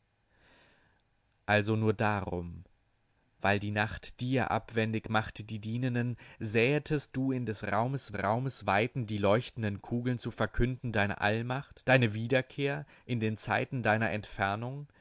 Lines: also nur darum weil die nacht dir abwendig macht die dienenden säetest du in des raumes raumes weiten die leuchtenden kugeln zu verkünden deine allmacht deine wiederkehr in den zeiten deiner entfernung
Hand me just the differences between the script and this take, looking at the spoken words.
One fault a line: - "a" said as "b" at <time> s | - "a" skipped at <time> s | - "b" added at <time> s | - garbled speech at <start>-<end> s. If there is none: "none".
none